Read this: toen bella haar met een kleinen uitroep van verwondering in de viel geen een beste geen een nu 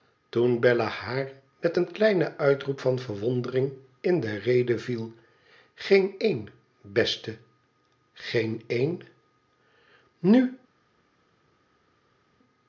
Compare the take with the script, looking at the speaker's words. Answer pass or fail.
fail